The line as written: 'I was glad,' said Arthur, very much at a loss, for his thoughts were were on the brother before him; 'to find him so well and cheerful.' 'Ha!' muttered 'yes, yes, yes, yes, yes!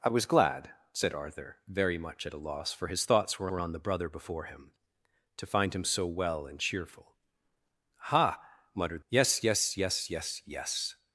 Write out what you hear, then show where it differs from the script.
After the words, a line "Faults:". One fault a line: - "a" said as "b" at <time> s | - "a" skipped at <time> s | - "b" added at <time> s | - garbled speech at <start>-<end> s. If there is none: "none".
'I was glad,' said Arthur, very much at a loss, for his thoughts were were on the brother before him; 'to find him so well and cheerful.' 'Ha!' muttered 'yes, yes, yes, yes, yes!
Faults:
none